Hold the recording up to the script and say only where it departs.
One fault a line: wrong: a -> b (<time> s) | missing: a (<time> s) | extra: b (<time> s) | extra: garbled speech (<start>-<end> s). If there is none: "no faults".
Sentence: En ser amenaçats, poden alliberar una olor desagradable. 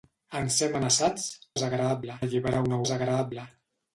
wrong: poden -> desagradable (1.5 s)
missing: olor (2.8 s)